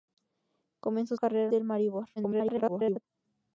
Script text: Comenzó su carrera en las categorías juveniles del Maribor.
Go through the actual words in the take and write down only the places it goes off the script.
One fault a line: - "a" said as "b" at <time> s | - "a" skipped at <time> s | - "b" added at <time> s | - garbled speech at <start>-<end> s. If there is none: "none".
- "su" skipped at 1.1 s
- "las categorías juveniles" skipped at 1.5 s
- garbled speech at 2.2-3.0 s